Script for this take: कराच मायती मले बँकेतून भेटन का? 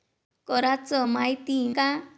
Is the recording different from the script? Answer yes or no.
yes